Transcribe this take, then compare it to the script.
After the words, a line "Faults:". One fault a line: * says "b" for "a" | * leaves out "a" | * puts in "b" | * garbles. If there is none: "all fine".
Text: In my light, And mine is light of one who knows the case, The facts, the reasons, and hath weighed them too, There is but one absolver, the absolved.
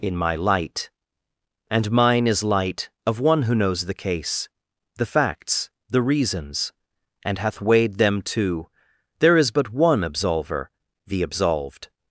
In my light, And mine is light of one who knows the case, The facts, the reasons, and hath weighed them too, There is but one absolver, the absolved.
Faults:
all fine